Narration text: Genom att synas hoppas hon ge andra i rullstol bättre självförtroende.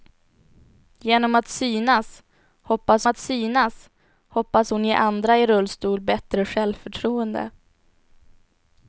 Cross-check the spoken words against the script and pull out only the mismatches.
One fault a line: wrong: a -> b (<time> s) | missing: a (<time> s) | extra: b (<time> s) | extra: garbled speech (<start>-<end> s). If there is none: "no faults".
extra: att synas hoppas (3.1 s)